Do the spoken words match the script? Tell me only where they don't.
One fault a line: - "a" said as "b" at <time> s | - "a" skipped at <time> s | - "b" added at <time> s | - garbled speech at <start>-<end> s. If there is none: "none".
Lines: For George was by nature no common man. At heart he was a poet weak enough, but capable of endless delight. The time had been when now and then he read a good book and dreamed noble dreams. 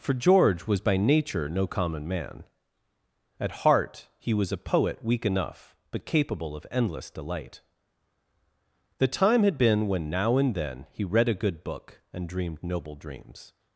none